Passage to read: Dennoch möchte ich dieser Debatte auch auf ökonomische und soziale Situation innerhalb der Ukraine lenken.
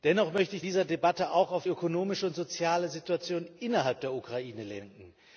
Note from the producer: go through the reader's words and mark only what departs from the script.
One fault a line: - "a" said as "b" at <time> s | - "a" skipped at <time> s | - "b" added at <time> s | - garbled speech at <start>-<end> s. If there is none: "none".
none